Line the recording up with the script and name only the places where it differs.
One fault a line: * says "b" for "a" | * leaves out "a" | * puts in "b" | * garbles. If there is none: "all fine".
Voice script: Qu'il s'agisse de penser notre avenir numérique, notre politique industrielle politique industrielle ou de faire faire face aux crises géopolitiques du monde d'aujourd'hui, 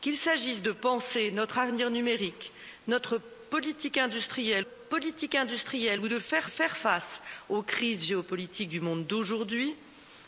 all fine